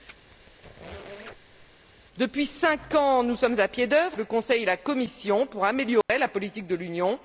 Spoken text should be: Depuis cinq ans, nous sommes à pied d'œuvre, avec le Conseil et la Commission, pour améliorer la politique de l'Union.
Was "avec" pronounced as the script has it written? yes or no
no